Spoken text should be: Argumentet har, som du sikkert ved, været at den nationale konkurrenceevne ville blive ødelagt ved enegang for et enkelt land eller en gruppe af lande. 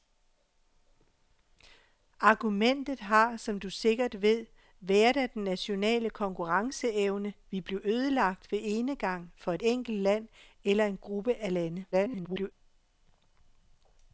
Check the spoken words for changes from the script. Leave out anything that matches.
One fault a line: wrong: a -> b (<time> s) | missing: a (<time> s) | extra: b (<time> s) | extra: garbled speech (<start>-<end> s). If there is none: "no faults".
extra: garbled speech (11.9-12.5 s)